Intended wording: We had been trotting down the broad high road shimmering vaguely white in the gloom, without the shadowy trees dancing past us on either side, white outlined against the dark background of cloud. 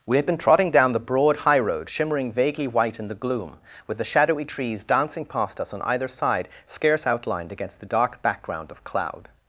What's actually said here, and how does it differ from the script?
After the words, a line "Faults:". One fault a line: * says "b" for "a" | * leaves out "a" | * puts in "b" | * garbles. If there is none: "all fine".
We had been trotting down the broad high road shimmering vaguely white in the gloom, with the shadowy trees dancing past us on either side, scarce outlined against the dark background of cloud.
Faults:
* says "with" for "without"
* says "scarce" for "white"